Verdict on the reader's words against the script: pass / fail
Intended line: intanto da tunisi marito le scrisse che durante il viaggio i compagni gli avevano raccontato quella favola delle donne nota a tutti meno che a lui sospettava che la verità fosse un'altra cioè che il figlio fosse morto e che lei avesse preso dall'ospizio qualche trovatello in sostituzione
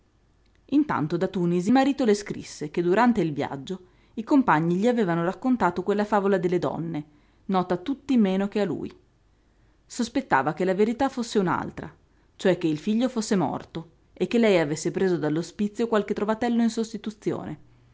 pass